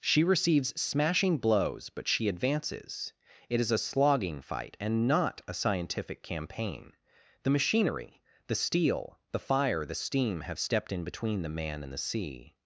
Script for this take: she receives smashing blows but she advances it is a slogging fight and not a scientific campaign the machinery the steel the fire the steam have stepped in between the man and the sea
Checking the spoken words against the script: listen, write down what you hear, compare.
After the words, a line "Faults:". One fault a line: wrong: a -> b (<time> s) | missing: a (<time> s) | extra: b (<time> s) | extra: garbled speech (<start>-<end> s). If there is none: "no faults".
she receives smashing blows but she advances it is a slogging fight and not a scientific campaign the machinery the steel the fire the steam have stepped in between the man and the sea
Faults:
no faults